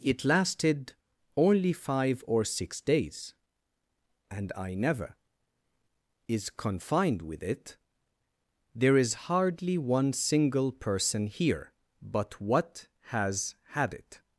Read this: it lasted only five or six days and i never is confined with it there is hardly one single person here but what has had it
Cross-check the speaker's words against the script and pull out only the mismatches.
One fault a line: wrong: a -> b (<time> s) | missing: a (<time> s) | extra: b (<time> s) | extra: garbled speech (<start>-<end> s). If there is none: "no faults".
no faults